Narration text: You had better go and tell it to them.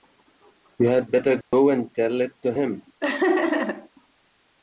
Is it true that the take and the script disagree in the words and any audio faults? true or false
true